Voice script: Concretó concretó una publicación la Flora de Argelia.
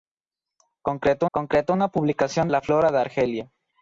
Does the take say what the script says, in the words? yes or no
yes